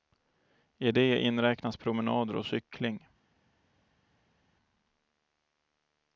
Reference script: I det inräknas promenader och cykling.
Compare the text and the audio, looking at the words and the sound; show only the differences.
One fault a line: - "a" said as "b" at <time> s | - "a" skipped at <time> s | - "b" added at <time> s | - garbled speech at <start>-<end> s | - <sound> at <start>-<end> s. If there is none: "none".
none